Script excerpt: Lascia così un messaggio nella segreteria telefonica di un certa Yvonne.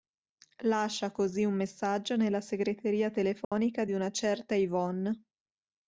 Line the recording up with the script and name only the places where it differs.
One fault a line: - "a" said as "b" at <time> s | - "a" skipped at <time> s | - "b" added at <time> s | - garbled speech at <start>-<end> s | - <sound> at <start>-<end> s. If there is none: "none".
- dropout at 3.4-3.5 s
- "un" said as "una" at 3.9 s